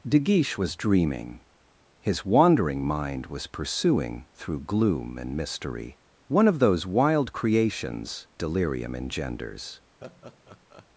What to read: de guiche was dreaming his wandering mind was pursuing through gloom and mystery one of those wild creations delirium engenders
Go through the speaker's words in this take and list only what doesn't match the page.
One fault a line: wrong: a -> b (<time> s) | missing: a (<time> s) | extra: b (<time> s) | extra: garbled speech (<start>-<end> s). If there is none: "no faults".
no faults